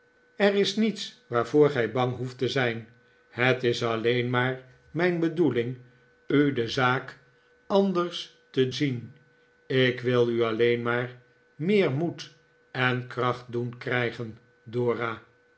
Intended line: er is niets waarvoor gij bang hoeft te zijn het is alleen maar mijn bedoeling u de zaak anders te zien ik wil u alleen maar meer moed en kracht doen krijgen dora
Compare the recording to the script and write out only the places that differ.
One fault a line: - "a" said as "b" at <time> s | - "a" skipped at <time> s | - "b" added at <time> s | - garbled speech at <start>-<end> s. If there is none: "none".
none